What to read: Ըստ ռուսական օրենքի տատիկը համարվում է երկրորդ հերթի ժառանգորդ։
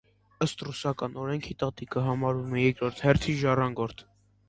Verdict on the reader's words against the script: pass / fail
pass